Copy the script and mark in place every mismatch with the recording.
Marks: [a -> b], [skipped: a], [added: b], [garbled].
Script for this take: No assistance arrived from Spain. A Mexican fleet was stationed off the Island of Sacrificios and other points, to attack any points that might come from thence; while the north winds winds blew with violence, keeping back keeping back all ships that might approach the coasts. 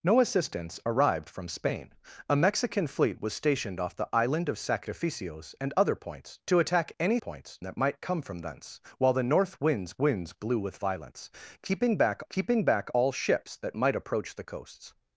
No assistance arrived from Spain. A Mexican fleet was stationed off the Island of Sacrificios and other points, to attack any points that might come from thence; while the north winds winds blew with violence, keeping back keeping back all ships that might approach the coasts.